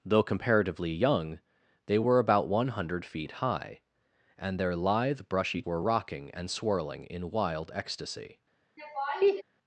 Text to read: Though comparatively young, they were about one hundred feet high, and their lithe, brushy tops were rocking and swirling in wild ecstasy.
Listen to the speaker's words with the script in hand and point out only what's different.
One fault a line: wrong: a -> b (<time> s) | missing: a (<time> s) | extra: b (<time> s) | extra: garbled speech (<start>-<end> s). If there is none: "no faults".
missing: tops (5.6 s)